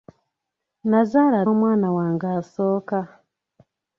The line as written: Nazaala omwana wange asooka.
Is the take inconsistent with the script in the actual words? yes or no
no